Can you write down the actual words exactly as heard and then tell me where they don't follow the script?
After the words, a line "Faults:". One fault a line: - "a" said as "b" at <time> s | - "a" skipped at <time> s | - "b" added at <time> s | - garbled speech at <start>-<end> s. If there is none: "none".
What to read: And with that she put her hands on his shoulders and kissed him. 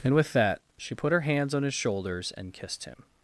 And with that she put her hands on his shoulders and kissed him.
Faults:
none